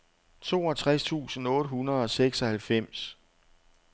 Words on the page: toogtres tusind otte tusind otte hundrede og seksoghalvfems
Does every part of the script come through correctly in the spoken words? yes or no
no